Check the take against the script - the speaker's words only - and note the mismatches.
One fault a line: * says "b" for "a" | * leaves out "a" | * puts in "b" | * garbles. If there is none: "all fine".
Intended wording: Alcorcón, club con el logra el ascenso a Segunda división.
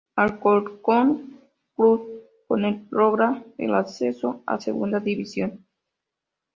all fine